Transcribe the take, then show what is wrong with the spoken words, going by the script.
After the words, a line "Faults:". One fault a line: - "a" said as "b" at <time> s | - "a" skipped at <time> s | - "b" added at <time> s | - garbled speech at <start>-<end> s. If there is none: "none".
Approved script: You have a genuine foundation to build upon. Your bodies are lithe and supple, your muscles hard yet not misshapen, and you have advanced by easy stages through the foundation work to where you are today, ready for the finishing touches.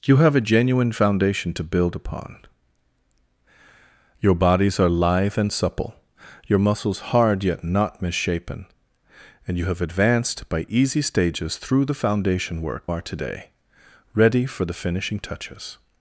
You have a genuine foundation to build upon. Your bodies are lithe and supple, your muscles hard yet not misshapen, and you have advanced by easy stages through the foundation work are today, ready for the finishing touches.
Faults:
- "to where you" skipped at 12.9 s